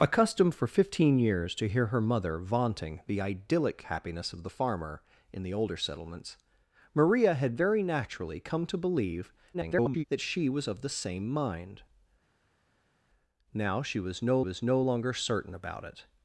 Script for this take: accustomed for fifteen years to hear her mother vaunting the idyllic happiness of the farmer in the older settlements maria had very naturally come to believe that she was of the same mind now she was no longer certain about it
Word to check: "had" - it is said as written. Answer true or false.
true